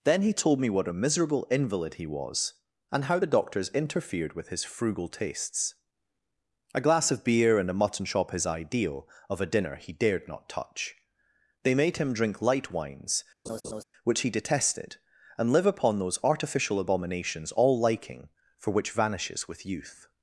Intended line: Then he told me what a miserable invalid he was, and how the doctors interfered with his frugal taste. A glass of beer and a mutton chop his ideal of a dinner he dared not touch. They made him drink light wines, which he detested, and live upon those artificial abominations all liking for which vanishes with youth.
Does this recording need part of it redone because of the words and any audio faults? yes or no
yes